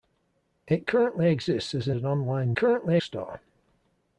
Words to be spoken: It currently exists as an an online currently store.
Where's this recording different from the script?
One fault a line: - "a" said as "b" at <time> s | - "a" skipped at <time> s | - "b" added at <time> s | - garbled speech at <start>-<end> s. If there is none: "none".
none